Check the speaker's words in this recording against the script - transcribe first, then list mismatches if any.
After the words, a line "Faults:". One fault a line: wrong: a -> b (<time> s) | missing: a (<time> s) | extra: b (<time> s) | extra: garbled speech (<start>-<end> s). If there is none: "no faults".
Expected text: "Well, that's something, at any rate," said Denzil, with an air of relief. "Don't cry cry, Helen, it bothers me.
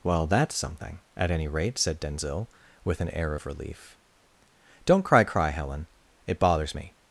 "Well, that's something, at any rate," said Denzil, with an air of relief. "Don't cry cry, Helen, it bothers me.
Faults:
no faults